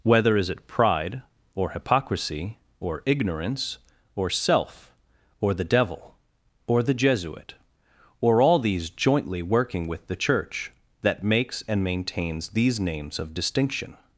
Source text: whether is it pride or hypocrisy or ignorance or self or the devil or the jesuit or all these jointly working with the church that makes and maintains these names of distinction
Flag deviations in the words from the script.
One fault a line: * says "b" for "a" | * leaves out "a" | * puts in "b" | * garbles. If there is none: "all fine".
all fine